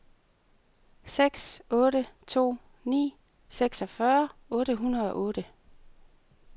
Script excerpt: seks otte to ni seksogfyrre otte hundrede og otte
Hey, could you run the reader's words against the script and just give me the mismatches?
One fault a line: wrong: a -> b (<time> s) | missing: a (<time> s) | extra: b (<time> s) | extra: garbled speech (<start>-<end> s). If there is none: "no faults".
no faults